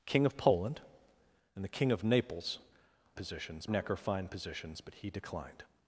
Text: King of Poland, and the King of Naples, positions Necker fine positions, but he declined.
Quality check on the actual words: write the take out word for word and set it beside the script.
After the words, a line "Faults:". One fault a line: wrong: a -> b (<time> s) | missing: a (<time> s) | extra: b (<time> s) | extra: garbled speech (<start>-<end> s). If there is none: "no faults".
King of Poland, and the King of Naples, positions Necker fine positions, but he declined.
Faults:
no faults